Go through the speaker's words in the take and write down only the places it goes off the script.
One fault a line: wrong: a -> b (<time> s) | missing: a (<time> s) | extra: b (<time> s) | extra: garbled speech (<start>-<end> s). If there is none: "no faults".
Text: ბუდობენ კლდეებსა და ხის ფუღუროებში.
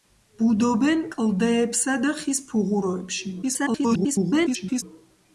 extra: garbled speech (3.4-4.8 s)